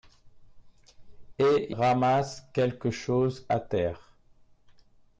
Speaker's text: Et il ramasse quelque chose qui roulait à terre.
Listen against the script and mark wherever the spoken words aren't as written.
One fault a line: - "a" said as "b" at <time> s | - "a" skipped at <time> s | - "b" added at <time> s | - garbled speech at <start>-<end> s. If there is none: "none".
- "il" skipped at 1.8 s
- "qui roulait" skipped at 3.5 s